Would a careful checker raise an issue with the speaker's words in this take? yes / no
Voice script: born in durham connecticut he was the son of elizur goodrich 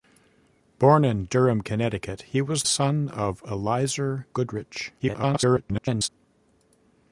yes